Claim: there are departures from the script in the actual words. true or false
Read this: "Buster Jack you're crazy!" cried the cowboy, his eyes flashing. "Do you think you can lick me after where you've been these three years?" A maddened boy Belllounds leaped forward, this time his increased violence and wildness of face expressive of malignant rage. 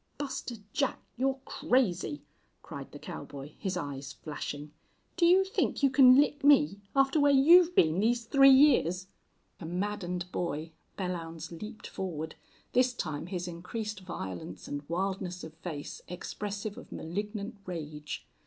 false